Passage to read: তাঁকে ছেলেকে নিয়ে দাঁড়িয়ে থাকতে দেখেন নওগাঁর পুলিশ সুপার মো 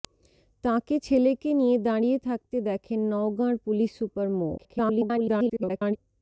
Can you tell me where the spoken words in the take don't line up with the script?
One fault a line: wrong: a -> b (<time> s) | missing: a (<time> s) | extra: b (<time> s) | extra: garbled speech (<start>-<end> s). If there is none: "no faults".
extra: garbled speech (4.6-6.0 s)